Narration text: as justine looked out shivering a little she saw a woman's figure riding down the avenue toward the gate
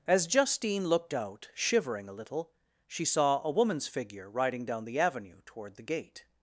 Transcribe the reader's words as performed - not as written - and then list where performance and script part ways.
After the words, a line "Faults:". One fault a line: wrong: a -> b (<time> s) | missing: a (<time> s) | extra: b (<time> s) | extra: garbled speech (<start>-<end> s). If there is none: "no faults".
as justine looked out shivering a little she saw a woman's figure riding down the avenue toward the gate
Faults:
no faults